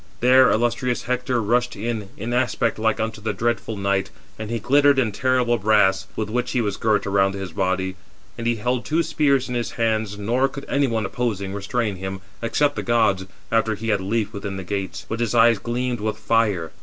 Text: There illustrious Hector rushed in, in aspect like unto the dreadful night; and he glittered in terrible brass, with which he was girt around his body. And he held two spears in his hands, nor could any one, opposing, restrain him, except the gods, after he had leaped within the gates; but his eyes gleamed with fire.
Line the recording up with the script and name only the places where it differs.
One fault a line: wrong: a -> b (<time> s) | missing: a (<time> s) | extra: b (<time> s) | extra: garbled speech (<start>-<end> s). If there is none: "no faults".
no faults